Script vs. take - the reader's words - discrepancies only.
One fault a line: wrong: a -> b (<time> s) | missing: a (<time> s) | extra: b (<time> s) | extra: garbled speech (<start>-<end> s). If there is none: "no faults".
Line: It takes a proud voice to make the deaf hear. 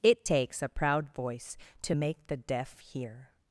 no faults